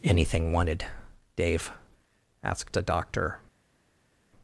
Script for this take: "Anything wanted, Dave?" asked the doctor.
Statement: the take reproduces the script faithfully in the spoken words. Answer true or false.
false